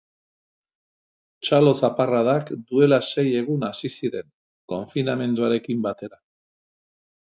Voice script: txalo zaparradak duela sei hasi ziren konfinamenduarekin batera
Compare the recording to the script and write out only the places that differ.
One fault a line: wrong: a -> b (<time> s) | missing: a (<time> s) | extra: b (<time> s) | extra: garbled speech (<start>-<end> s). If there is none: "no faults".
extra: egun (3.5 s)